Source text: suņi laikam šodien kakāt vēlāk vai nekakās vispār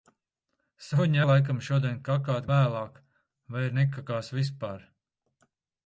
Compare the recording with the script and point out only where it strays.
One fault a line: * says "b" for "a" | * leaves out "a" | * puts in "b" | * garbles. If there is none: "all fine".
all fine